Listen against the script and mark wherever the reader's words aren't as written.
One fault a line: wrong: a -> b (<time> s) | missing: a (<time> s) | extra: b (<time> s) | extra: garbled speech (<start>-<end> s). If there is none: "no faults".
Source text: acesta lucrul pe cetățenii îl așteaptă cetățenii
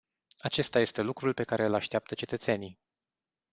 extra: este (0.8 s)
wrong: cetățenii -> care (1.4 s)